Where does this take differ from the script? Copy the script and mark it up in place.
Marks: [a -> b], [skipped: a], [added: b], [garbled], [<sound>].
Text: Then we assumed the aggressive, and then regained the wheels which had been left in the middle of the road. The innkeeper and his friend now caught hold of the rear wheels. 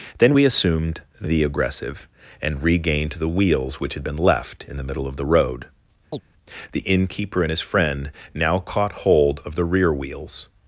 Then we assumed the aggressive, and [skipped: then] regained the wheels which had been left in the middle of the road. [chirp] The innkeeper and his friend now caught hold of the rear wheels.